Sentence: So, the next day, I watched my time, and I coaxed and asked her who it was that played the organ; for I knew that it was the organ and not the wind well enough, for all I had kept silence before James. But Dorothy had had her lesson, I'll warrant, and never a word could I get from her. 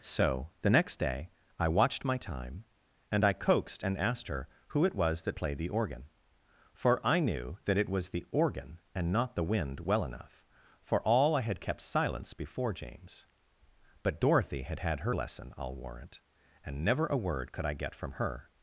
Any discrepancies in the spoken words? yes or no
no